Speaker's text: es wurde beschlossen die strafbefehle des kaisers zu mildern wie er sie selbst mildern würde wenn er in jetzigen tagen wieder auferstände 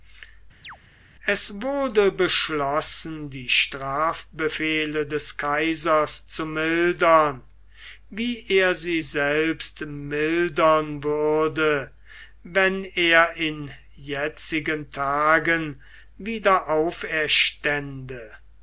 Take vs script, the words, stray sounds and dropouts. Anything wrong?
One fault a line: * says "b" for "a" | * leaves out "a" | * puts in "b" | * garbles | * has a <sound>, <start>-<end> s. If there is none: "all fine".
* has a chirp, 0.6-0.8 s